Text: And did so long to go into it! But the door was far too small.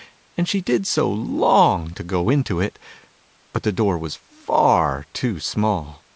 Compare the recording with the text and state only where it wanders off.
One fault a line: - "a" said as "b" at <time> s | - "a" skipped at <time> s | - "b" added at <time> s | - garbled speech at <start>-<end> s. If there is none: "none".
- "she" added at 0.5 s